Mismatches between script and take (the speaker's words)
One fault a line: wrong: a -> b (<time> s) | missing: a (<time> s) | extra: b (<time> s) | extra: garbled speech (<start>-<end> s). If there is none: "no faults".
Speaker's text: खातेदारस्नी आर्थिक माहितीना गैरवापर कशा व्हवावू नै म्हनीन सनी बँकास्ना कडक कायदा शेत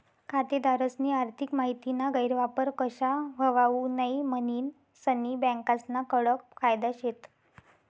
no faults